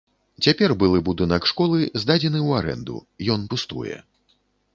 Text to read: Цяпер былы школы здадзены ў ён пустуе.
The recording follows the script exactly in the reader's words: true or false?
false